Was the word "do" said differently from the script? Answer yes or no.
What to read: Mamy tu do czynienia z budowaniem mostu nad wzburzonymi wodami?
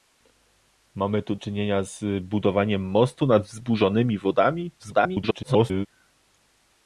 yes